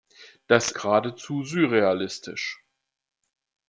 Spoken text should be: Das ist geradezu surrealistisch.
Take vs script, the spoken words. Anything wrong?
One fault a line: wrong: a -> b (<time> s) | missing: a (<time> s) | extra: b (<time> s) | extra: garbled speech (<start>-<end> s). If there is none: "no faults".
missing: ist (0.7 s)